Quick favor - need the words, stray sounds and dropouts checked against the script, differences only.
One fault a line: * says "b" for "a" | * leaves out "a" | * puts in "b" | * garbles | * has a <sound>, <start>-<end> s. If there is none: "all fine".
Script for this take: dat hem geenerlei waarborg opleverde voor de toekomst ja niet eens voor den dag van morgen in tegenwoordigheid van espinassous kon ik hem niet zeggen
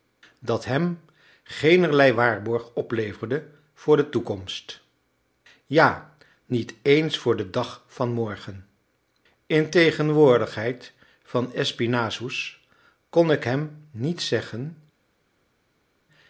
all fine